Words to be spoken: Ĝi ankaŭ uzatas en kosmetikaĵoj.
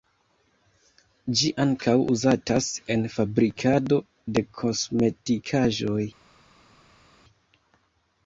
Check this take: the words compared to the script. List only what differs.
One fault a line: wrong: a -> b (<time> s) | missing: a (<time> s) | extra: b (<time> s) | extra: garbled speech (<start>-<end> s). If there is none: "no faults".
extra: fabrikado de (3.2 s)